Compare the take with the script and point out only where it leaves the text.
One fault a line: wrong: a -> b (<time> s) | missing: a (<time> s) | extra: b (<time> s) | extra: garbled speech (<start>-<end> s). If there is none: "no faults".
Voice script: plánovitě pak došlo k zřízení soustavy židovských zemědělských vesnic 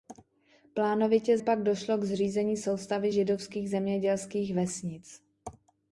no faults